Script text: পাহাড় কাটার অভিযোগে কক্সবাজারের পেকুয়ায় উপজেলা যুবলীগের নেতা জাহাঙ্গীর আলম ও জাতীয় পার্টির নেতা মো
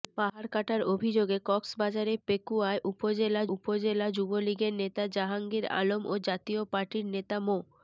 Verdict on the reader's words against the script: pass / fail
fail